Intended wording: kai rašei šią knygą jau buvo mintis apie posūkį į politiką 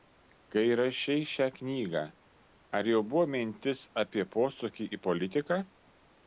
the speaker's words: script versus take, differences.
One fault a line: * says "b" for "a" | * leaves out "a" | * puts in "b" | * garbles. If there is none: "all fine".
* puts in "ar"